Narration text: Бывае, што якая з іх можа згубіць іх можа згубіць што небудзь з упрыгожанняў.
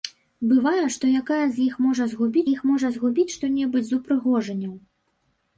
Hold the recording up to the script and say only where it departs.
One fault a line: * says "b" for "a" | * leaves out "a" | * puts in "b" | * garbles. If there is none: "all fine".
all fine